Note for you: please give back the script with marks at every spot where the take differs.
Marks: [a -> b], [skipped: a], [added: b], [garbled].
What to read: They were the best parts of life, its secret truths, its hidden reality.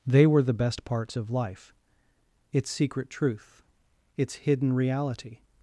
They were the best parts of life, its secret [truths, -> truth] its hidden reality.